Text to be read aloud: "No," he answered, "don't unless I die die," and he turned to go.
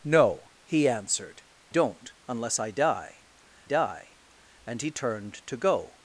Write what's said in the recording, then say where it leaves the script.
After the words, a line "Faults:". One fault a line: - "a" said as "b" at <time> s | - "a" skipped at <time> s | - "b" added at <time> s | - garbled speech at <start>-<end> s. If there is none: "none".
"No," he answered, "don't unless I die die," and he turned to go.
Faults:
none